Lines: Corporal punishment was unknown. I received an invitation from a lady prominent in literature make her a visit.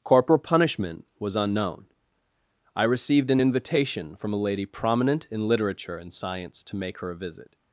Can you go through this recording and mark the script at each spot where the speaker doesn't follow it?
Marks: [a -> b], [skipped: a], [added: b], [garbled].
Corporal punishment was unknown. I received an invitation from a lady prominent in literature [added: and science to] make her a visit.